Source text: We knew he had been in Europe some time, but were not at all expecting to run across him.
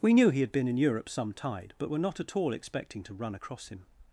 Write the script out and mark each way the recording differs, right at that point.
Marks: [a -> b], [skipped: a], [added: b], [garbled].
We knew he had been in Europe some [time, -> tide] but were not at all expecting to run across him.